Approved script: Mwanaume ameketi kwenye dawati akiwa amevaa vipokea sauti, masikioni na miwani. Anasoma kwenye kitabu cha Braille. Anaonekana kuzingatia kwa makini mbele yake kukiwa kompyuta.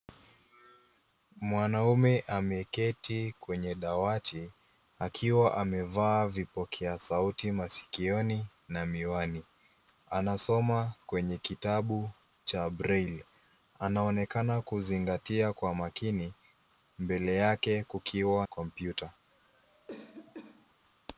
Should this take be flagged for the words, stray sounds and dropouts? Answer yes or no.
yes